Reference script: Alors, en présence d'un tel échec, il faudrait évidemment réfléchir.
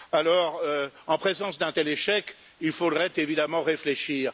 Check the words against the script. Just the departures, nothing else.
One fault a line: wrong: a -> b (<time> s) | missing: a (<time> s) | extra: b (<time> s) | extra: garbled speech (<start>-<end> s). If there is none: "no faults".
no faults